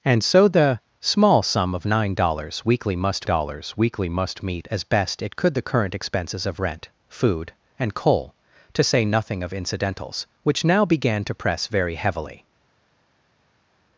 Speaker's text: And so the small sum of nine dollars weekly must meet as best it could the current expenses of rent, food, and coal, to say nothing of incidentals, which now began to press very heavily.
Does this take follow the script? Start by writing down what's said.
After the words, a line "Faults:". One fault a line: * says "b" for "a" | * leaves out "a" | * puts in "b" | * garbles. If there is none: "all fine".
And so the small sum of nine dollars weekly must dollars weekly must meet as best it could the current expenses of rent, food, and coal, to say nothing of incidentals, which now began to press very heavily.
Faults:
* puts in "dollars weekly must"